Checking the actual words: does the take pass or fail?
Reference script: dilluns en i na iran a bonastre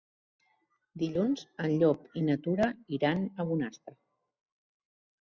fail